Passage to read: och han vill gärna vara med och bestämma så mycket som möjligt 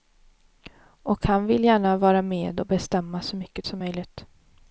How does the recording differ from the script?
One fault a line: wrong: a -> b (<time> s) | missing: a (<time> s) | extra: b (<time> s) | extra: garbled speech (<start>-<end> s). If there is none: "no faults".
no faults